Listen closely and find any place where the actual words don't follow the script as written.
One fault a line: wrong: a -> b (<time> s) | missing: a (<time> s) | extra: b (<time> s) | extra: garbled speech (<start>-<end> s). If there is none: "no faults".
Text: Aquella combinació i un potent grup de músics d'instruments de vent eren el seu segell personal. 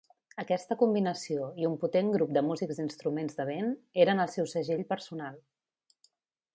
wrong: Aquella -> Aquesta (0.4 s)